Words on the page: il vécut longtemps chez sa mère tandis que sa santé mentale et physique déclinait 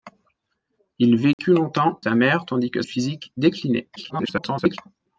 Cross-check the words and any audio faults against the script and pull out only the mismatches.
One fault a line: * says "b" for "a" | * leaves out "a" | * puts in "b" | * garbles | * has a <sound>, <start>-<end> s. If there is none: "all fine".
* has a dropout, 1.3-1.4 s
* leaves out "chez"
* leaves out "sa santé mentale"
* garbles